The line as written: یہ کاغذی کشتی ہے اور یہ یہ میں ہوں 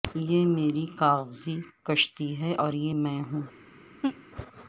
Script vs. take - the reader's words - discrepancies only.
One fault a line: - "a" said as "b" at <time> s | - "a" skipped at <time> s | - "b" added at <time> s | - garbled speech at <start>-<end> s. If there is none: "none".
- "میری" added at 0.5 s
- "یہ" skipped at 2.9 s